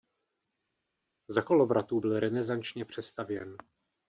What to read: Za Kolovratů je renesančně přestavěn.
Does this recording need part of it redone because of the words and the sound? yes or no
yes